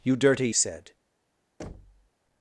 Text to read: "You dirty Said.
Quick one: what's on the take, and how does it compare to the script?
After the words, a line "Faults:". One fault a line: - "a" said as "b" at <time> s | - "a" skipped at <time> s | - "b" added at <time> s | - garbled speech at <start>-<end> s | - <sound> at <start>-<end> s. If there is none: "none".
"You dirty Said.
Faults:
- thud at 1.6-2.1 s